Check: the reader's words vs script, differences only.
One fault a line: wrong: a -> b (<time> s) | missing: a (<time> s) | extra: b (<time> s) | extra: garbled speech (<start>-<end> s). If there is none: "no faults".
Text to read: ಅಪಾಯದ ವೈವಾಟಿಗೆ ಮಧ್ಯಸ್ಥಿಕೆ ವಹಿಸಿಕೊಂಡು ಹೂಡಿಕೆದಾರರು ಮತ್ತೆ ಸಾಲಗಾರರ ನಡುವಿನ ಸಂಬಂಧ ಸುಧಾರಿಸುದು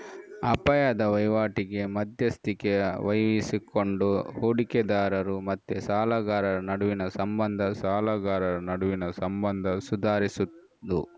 extra: ಸಾಲಗಾರರ ನಡುವಿನ ಸಂಬಂಧ (7.8 s)